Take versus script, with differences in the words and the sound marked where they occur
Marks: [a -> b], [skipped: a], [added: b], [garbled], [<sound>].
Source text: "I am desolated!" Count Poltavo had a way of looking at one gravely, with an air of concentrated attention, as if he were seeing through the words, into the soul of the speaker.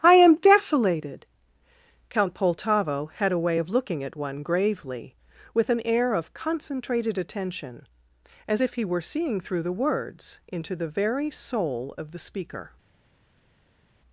"I am desolated!" Count Poltavo had a way of looking at one gravely, with an air of concentrated attention, as if he were seeing through the words, into the [added: very] soul of the speaker.